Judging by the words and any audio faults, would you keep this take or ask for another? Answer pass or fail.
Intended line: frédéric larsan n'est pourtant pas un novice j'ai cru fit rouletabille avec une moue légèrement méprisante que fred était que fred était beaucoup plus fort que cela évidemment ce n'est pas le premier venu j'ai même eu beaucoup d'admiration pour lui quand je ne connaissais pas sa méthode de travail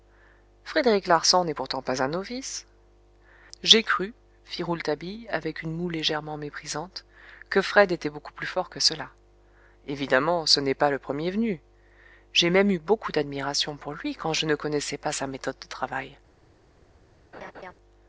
fail